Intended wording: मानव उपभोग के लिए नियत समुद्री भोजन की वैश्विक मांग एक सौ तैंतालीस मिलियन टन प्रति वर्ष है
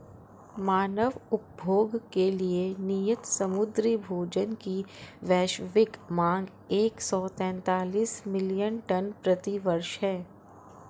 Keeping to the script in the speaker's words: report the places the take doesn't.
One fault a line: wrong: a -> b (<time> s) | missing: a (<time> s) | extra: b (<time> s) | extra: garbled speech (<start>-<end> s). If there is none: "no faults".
no faults